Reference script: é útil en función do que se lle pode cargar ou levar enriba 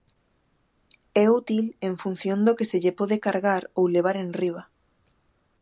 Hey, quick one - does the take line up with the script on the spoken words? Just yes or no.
yes